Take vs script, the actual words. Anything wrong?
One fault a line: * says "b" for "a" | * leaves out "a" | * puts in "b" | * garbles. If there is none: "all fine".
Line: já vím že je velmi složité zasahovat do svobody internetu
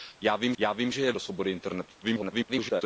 * puts in "já vím"
* leaves out "velmi složité zasahovat"
* garbles